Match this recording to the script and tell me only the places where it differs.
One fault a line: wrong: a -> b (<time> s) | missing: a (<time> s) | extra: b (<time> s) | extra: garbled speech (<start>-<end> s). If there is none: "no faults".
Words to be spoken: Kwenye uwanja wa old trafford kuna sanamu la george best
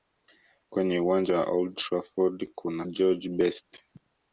missing: sanamu la (2.9 s)